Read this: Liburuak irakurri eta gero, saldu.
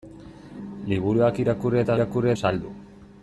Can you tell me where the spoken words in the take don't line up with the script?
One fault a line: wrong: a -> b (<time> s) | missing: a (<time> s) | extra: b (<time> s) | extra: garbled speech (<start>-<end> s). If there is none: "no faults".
wrong: gero -> irakurri (1.9 s)